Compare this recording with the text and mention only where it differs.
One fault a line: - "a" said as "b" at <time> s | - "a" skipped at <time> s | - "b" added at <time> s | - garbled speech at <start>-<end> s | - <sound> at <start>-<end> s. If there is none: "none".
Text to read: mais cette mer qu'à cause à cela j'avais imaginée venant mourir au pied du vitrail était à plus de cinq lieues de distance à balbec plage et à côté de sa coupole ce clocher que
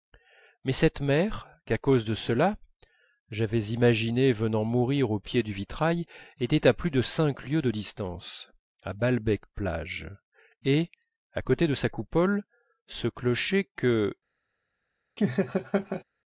- "à" said as "de" at 2.0 s
- laugh at 15.2-16.0 s